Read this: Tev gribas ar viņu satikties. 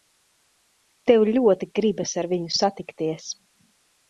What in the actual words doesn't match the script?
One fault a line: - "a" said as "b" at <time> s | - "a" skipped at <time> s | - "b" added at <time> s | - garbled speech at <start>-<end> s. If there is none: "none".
- "ļoti" added at 1.4 s